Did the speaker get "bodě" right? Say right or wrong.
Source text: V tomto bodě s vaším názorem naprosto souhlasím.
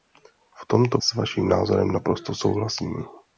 wrong